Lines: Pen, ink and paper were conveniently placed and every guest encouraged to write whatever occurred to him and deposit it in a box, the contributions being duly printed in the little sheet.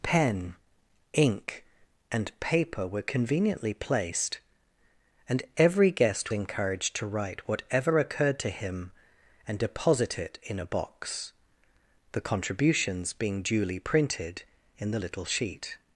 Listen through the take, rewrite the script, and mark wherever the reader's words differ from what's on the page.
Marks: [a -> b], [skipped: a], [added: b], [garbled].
Pen, ink and paper were conveniently placed and every guest encouraged to write whatever occurred to him and deposit it in a box, the contributions being duly printed in the little sheet.